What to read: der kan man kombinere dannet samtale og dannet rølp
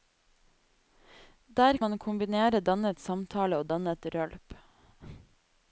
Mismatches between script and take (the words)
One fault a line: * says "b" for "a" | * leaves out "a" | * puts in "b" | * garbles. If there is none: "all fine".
* leaves out "kan"